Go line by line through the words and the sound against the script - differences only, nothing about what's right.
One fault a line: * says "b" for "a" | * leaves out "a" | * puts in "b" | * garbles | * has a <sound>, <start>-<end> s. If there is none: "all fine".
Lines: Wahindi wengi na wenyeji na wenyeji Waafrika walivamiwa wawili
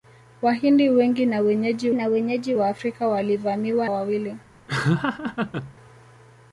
* has a laugh, 4.7-5.7 s